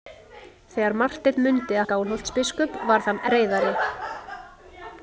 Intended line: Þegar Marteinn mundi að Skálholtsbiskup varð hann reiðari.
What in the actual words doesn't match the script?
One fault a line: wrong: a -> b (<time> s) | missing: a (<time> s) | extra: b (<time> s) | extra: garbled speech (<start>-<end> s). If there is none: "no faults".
no faults